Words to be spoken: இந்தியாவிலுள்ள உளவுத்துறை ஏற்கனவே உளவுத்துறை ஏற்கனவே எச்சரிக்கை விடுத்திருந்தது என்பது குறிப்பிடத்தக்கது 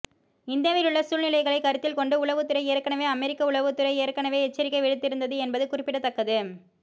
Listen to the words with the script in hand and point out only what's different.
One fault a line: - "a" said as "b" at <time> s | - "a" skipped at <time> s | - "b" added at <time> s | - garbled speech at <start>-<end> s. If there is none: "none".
- "சூழ்நிலைகளை கருத்தில் கொண்டு" added at 1.0 s
- "அமெரிக்க" added at 3.1 s